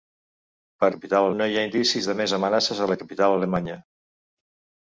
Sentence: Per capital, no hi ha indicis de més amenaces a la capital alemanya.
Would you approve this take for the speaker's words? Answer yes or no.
yes